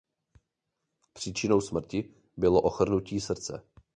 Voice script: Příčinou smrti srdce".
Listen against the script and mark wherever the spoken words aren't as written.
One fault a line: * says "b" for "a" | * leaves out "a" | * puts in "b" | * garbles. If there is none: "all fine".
* puts in "bylo ochrnutí"